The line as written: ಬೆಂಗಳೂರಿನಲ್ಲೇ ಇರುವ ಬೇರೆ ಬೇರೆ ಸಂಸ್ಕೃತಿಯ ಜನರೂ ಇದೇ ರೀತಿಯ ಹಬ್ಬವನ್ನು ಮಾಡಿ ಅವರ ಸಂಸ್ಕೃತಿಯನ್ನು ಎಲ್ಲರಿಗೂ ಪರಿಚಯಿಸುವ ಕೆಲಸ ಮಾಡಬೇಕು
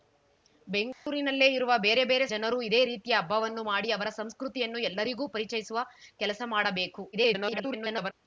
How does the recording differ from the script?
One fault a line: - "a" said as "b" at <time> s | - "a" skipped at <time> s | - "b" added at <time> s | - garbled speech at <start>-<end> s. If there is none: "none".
- "ಸಂಸ್ಕೃತಿಯ" skipped at 2.2 s
- garbled speech at 7.1-8.1 s